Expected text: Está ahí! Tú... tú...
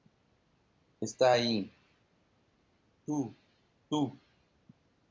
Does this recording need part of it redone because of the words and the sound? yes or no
no